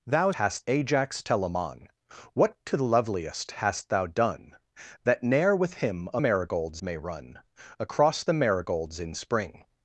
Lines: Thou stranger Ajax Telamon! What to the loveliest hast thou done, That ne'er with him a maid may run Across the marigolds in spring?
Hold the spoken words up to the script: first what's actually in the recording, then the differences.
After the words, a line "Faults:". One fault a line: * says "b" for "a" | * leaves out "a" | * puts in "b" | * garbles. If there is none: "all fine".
Thou hast Ajax Telamon! What to the loveliest hast thou done, That ne'er with him a marigolds may run Across the marigolds in spring?
Faults:
* says "hast" for "stranger"
* says "marigolds" for "maid"